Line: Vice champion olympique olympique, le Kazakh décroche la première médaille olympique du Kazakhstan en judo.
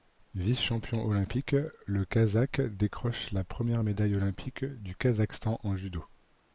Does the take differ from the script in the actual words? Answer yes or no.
yes